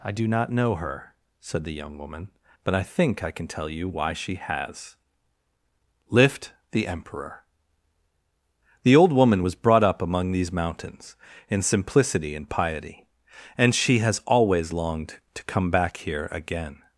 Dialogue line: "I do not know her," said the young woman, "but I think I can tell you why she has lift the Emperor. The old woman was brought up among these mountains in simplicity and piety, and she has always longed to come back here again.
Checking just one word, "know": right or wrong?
right